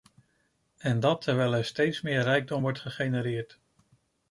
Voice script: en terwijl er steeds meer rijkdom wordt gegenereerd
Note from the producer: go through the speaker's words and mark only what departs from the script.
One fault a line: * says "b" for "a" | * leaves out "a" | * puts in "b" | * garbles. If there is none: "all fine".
* puts in "dat"